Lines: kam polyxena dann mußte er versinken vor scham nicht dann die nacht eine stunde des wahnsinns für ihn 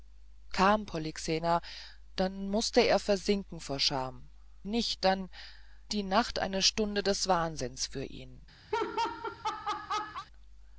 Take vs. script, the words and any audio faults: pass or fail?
fail